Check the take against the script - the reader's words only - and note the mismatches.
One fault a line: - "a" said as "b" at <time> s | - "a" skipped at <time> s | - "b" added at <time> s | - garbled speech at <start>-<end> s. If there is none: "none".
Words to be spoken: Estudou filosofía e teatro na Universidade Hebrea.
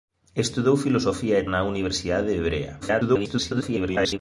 - "teatro" skipped at 1.5 s
- garbled speech at 2.8-4.2 s